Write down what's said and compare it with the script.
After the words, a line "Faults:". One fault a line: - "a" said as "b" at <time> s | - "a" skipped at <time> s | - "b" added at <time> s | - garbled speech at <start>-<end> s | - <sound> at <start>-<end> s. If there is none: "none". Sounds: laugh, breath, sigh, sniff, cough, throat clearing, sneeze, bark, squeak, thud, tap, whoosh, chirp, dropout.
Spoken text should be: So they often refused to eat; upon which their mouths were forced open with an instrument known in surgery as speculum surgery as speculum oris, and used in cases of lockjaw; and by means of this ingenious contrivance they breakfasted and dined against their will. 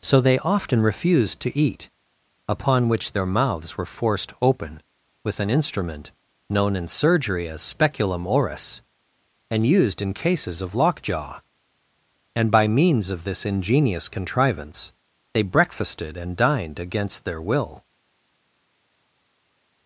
So they often refused to eat; upon which their mouths were forced open with an instrument known in surgery as speculum oris, and used in cases of lockjaw; and by means of this ingenious contrivance they breakfasted and dined against their will.
Faults:
- "surgery as speculum" skipped at 8.3 s